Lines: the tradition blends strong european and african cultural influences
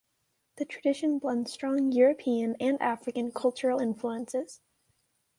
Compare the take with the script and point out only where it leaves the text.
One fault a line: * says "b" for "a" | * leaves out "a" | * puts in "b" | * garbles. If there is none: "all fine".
all fine